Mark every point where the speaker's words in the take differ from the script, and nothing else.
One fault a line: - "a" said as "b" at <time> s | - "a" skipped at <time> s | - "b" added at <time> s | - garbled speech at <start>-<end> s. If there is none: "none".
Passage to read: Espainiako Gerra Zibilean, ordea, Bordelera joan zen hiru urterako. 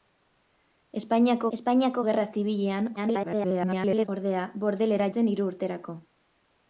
- "espainiako" added at 1.6 s
- garbled speech at 3.0-4.1 s
- "joan" skipped at 5.1 s